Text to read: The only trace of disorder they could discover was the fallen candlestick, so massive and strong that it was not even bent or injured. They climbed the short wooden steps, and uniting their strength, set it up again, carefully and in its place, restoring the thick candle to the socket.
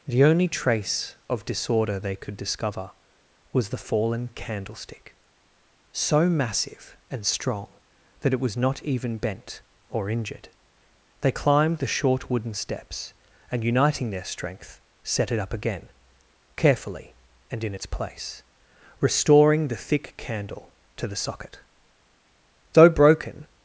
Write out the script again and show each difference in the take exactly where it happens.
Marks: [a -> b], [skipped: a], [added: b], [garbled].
The only trace of disorder they could discover was the fallen candlestick, so massive and strong that it was not even bent or injured. They climbed the short wooden steps, and uniting their strength, set it up again, carefully and in its place, restoring the thick candle to the socket. [added: Though broken]